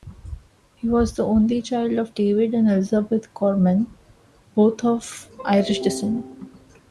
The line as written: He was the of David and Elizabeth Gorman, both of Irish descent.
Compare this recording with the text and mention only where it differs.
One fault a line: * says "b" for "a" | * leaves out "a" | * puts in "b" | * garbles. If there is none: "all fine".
* puts in "only child"